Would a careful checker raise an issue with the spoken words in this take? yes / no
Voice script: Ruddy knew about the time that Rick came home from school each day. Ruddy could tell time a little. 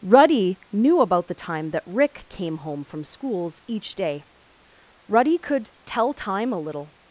yes